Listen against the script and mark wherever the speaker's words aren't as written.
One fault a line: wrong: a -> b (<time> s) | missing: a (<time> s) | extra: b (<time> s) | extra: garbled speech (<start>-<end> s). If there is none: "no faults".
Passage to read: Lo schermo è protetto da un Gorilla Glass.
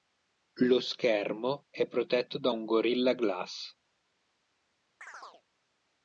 no faults